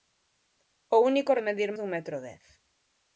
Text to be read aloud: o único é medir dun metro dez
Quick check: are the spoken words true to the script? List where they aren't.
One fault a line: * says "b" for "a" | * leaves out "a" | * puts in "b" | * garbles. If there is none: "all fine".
all fine